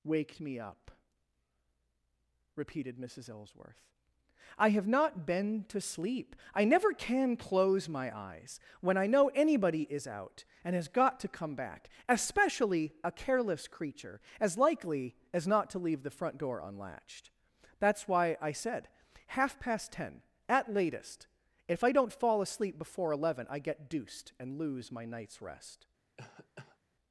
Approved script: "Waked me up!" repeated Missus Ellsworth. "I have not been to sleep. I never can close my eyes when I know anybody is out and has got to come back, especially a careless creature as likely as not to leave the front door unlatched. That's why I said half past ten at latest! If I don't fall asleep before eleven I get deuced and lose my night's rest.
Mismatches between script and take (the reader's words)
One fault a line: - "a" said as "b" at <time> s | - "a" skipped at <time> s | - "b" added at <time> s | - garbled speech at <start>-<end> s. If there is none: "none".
none